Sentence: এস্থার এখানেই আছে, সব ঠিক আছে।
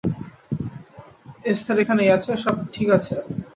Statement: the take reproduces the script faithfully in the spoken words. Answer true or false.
true